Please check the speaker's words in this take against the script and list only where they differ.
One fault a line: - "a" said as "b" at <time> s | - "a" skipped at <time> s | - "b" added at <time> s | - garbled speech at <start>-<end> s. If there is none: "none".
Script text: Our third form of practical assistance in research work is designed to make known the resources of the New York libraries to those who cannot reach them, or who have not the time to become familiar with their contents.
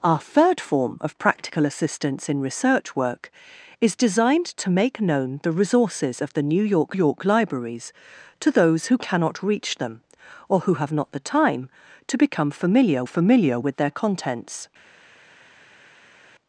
- "York" added at 6.9 s
- "familiar" added at 13.0 s